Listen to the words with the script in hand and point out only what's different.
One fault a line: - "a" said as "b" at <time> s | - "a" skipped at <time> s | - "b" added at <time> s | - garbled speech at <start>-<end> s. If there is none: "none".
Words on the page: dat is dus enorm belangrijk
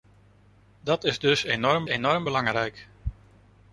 - "enorm" added at 1.8 s